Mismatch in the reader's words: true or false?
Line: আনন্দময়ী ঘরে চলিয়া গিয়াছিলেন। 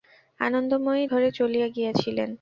false